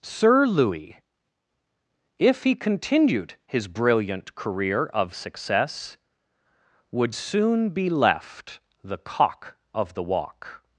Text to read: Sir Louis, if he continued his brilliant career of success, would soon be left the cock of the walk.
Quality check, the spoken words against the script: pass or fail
pass